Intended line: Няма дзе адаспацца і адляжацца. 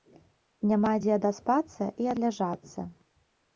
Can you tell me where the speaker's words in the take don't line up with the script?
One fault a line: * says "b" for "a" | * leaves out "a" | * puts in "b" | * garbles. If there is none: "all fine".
all fine